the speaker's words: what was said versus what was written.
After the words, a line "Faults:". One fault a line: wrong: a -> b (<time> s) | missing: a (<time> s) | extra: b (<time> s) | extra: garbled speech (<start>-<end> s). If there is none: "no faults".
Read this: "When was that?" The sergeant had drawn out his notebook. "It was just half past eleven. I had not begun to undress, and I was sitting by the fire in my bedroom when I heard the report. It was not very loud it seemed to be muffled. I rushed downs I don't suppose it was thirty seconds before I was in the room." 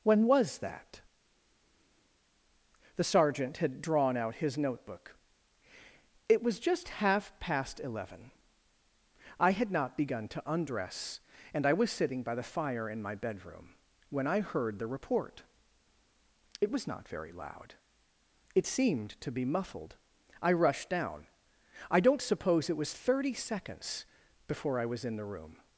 "When was that?" The sergeant had drawn out his notebook. "It was just half past eleven. I had not begun to undress, and I was sitting by the fire in my bedroom when I heard the report. It was not very loud it seemed to be muffled. I rushed down I don't suppose it was thirty seconds before I was in the room."
Faults:
wrong: downs -> down (20.9 s)